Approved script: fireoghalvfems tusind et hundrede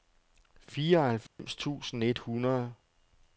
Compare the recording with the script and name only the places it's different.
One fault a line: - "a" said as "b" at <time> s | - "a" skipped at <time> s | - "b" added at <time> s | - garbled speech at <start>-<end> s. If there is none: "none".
none